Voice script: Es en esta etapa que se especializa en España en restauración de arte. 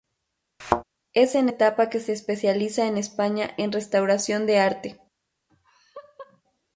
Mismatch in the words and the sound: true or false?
true